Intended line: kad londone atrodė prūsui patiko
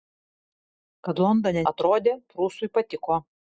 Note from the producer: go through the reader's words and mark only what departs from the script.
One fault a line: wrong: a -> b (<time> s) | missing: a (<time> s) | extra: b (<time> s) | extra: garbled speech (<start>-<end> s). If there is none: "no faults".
no faults